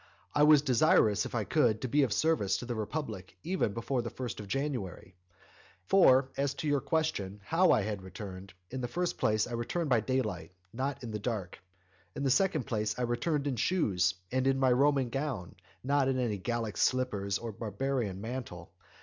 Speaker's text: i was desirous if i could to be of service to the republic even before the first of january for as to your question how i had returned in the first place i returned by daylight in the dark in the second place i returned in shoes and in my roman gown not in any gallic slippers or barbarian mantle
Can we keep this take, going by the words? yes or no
no